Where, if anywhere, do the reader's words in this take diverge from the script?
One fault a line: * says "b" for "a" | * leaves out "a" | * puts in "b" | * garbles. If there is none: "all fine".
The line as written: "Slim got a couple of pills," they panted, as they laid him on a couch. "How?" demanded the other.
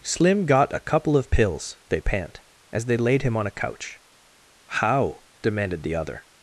* says "pant" for "panted"